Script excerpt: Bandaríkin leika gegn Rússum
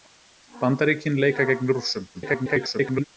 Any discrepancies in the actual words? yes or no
yes